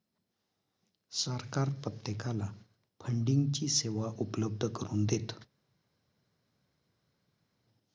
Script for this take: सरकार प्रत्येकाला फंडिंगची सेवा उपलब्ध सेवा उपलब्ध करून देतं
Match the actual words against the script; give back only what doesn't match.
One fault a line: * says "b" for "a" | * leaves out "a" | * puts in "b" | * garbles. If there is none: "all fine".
* leaves out "सेवा उपलब्ध"